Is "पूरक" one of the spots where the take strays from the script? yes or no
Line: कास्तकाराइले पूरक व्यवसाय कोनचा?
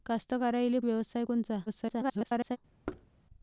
yes